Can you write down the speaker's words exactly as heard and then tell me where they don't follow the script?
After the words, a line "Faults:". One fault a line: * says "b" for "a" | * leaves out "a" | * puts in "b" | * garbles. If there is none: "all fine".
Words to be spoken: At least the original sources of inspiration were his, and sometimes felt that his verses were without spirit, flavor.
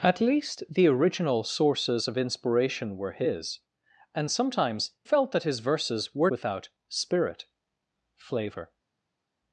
At least the original sources of inspiration were his, and sometimes felt that his verses were without spirit, flavor.
Faults:
all fine